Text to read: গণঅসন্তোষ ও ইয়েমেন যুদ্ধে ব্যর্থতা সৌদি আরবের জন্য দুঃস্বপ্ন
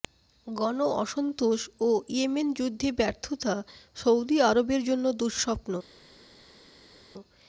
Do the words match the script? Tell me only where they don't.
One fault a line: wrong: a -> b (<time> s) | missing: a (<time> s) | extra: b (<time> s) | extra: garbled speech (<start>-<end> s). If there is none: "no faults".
no faults